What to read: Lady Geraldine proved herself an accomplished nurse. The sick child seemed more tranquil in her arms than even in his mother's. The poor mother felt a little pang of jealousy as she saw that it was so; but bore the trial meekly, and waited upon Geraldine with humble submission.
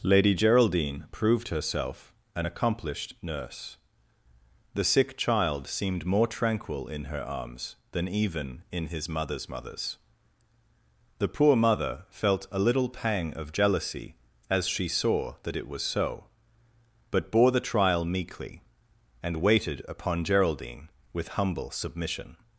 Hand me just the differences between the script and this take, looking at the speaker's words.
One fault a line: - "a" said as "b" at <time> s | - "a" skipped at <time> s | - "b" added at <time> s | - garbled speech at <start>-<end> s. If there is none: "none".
- "mother's" added at 9.5 s